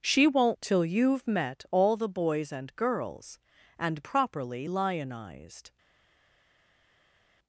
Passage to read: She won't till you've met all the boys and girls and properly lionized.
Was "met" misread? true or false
false